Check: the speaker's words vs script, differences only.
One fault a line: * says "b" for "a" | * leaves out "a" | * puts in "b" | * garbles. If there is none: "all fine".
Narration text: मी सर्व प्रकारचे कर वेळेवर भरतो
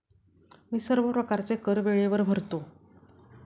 all fine